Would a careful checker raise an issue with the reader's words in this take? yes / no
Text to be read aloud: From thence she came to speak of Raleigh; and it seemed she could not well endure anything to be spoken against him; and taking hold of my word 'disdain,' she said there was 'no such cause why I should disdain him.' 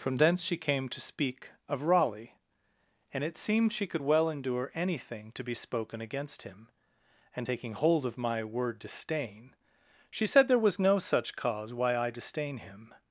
yes